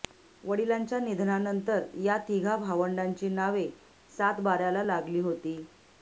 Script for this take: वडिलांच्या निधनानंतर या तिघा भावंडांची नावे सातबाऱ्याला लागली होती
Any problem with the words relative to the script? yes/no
no